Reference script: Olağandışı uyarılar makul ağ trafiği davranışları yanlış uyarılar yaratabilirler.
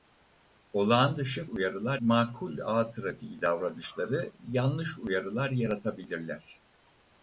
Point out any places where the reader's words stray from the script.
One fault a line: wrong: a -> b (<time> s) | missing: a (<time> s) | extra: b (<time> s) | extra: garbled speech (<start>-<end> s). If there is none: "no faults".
no faults